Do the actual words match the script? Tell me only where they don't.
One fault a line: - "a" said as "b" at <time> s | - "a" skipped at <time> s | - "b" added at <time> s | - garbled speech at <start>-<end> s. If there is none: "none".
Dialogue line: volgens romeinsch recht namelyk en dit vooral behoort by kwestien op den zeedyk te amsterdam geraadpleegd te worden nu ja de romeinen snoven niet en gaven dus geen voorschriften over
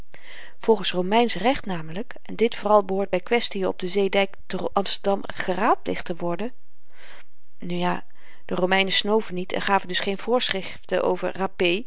none